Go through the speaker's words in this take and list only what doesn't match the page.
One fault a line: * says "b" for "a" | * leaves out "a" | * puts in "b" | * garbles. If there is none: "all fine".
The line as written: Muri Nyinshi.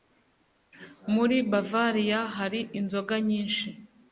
* puts in "Bavariya hari inzoga"